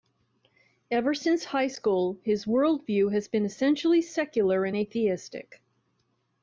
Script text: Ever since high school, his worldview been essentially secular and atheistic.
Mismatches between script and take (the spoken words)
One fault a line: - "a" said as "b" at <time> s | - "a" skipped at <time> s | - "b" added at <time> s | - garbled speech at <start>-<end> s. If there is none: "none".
- "has" added at 3.1 s